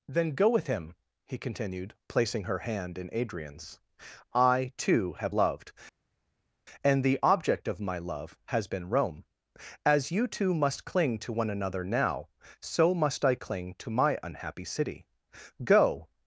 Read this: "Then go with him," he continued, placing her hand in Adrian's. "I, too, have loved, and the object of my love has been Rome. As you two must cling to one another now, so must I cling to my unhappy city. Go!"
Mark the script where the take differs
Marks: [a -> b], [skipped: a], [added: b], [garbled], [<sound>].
"Then go with him," he continued, placing her hand in Adrian's. "I, too, have loved, and the object of my love has been Rome. As you two must cling to one another now, so must I cling to my unhappy city. Go!"